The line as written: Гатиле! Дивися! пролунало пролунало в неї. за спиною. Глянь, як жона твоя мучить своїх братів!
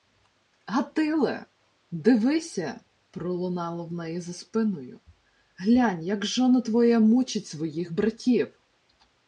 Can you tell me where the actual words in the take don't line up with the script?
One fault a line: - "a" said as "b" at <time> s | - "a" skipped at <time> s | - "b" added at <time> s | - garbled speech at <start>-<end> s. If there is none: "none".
- "пролунало" skipped at 3.9 s